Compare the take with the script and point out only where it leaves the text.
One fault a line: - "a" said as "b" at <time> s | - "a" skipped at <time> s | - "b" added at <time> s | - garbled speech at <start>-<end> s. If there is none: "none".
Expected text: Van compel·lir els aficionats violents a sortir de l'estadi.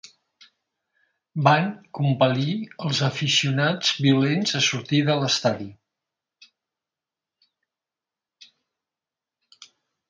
none